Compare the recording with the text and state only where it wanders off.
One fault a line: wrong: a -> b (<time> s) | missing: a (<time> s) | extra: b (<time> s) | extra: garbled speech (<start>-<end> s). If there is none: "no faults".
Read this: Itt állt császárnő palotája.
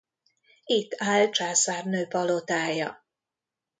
no faults